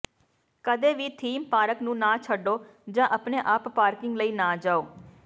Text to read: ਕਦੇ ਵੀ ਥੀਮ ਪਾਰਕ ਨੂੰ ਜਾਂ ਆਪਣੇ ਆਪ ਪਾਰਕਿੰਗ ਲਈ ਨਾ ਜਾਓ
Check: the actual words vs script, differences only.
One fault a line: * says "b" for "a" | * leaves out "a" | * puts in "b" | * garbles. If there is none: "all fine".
* puts in "ਨਾ ਛੱਡੋ"